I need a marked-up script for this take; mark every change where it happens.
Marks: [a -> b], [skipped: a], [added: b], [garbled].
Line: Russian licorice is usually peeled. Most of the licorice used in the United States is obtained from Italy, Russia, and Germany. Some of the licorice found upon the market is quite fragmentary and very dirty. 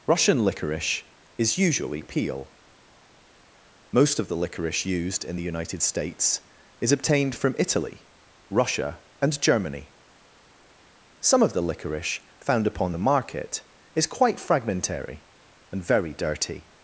Russian licorice is usually [peeled. -> peel] Most of the licorice used in the United States is obtained from Italy, Russia, and Germany. Some of the licorice found upon the market is quite fragmentary and very dirty.